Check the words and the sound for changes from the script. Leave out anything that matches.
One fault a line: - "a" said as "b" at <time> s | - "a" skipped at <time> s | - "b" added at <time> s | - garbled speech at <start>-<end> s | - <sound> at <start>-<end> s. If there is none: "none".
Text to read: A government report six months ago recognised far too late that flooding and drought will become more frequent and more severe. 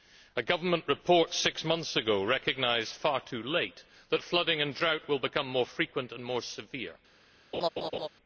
- laugh at 7.5-8.1 s